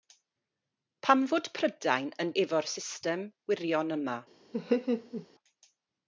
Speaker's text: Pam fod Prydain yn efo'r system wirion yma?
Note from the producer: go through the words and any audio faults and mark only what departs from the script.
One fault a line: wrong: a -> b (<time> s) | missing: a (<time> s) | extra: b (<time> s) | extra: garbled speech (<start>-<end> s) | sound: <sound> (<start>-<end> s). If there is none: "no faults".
sound: laugh (4.5-5.3 s)